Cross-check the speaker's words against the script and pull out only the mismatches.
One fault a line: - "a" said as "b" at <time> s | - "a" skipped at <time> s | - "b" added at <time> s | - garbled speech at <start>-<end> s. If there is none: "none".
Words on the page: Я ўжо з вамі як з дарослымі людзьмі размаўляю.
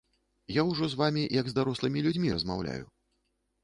none